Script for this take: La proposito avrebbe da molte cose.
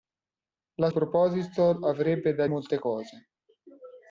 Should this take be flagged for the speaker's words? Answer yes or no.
no